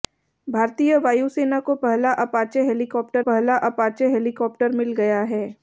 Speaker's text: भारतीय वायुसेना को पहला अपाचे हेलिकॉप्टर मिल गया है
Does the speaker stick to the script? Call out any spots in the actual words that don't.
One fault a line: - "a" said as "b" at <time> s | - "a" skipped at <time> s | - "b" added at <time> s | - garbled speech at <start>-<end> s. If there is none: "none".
- "पहला अपाचे हेलिकॉप्टर" added at 3.2 s